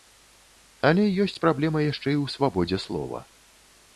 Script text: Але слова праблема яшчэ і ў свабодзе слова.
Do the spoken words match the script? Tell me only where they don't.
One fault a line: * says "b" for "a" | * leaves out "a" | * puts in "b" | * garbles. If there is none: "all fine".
* says "ёсць" for "слова"